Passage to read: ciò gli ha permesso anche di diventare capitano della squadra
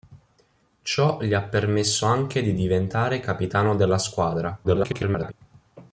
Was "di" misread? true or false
false